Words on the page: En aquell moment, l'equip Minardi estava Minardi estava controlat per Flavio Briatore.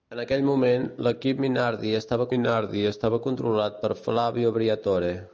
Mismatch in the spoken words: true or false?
false